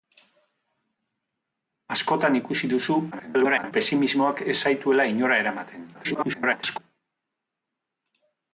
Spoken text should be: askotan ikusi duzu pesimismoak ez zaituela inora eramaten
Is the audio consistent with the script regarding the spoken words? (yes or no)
no